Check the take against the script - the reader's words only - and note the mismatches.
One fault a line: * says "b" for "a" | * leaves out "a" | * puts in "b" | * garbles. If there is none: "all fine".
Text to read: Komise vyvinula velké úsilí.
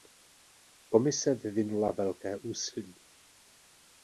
all fine